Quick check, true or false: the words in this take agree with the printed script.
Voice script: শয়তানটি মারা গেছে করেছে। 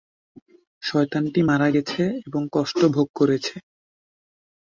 false